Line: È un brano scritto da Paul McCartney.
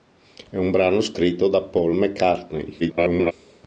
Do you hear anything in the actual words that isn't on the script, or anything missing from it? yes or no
yes